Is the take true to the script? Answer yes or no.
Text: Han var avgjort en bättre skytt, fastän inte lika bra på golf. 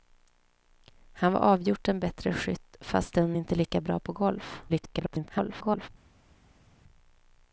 no